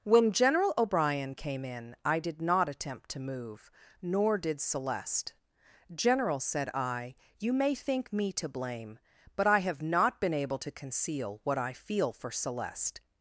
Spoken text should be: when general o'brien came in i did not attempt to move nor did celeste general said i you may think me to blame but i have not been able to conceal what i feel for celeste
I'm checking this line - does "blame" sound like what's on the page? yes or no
yes